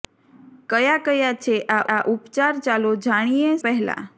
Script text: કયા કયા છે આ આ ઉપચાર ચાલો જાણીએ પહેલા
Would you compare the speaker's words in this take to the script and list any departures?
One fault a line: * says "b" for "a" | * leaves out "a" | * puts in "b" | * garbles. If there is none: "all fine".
all fine